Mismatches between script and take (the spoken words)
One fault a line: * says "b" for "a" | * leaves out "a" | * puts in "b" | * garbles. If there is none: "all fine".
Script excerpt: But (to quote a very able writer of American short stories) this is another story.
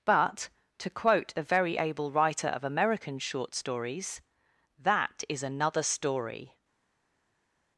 * says "that" for "this"